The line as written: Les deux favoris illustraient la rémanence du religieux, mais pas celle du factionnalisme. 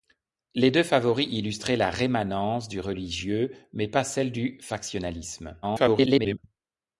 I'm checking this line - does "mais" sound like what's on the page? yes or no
yes